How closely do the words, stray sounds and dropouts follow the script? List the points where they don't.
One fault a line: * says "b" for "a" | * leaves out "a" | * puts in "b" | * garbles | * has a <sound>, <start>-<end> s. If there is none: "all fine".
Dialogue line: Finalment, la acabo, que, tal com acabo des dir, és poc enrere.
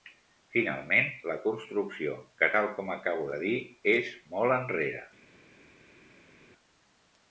* says "construcció" for "acabo"
* says "de" for "des"
* says "molt" for "poc"